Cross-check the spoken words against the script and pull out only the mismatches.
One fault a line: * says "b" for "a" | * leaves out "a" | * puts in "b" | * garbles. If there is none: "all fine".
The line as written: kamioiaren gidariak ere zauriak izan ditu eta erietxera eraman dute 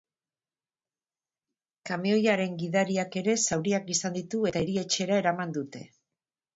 all fine